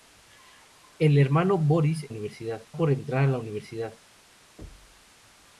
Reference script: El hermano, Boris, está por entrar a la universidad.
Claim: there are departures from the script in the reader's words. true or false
true